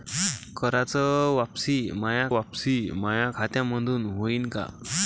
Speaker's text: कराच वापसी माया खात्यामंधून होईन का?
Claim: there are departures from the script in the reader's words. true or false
true